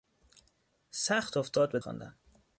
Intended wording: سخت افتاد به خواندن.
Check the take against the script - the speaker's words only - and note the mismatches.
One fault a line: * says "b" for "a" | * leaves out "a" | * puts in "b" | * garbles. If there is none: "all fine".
all fine